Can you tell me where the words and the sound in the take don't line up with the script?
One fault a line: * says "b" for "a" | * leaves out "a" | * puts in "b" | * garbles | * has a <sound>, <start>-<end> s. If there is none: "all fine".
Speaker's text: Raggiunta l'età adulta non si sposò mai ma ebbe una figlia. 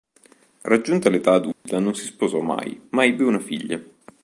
* has a dropout, 1.5-1.7 s